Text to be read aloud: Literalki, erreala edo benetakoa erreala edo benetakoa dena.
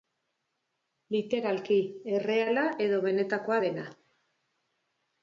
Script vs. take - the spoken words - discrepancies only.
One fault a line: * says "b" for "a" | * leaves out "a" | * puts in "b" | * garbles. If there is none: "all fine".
* leaves out "erreala edo benetakoa"